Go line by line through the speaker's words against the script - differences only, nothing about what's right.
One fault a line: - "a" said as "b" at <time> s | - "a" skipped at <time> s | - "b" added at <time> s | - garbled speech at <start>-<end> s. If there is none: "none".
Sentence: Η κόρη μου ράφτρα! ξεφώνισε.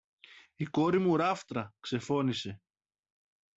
none